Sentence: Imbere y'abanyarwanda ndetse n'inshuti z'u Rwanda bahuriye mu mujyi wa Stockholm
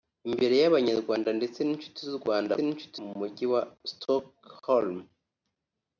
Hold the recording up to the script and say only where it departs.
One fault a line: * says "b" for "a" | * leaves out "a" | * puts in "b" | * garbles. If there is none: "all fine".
* says "n'inshuti" for "bahuriye"